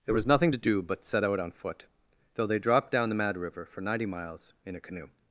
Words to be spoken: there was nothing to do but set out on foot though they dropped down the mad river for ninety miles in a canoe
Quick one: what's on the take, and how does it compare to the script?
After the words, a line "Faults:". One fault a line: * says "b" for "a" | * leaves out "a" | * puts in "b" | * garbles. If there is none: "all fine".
there was nothing to do but set out on foot though they dropped down the mad river for ninety miles in a canoe
Faults:
all fine